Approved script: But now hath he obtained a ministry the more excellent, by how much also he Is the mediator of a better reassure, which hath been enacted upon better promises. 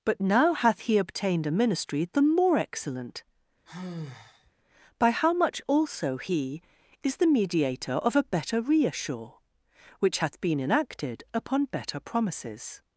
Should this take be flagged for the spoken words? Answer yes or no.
no